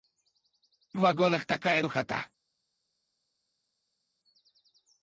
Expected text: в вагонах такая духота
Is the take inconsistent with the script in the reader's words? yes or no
no